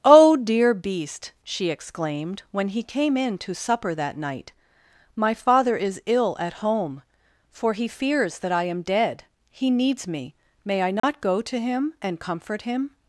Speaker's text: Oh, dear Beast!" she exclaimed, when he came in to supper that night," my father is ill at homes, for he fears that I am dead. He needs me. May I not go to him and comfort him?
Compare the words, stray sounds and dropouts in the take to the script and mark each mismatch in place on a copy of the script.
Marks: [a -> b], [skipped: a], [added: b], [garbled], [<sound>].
Oh, dear Beast!" she exclaimed, when he came in to supper that night," my father is ill at [homes, -> home] for he fears that I am dead. He needs me. May I not [dropout] go to him and comfort him?